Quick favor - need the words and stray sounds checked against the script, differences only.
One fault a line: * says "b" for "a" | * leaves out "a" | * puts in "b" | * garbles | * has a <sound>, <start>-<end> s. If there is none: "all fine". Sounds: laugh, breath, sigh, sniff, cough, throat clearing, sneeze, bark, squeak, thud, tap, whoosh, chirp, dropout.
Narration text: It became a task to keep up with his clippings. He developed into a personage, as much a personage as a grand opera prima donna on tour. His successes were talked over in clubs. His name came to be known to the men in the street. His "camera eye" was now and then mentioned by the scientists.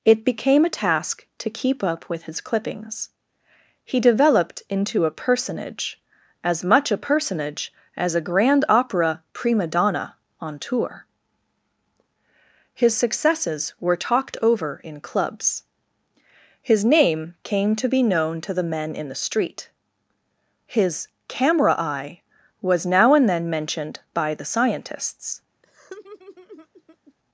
* has a laugh, 25.6-27.1 s